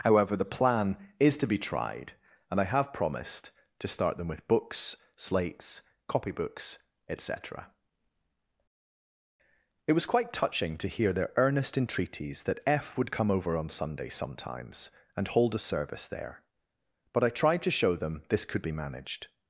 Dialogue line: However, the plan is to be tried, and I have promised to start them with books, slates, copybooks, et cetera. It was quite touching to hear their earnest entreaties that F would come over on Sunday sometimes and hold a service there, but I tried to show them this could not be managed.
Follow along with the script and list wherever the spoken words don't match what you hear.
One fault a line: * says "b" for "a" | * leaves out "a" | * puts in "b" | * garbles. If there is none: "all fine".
* leaves out "not"